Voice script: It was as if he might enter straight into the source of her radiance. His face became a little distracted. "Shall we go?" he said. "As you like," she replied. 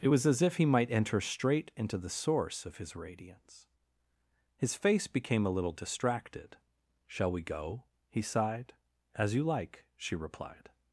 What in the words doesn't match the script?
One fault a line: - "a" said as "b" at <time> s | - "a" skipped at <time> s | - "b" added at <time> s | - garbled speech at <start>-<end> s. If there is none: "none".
- "her" said as "his" at 2.8 s
- "said" said as "sighed" at 8.2 s